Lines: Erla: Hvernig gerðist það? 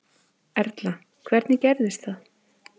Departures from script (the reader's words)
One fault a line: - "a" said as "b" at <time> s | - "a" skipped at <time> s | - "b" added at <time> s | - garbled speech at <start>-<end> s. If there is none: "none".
none